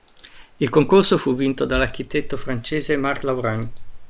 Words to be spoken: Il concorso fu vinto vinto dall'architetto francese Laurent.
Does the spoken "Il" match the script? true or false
true